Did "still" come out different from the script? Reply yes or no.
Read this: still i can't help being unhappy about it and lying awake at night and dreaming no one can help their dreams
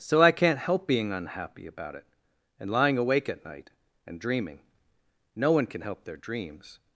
yes